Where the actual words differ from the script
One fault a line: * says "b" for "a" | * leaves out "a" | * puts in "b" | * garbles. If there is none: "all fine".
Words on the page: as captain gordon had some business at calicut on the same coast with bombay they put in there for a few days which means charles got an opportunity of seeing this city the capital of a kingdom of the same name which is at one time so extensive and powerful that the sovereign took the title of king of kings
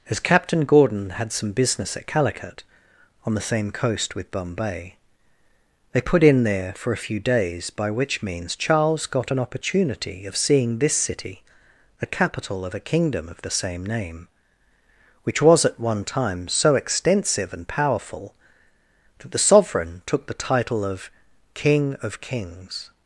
* puts in "by"
* says "was" for "is"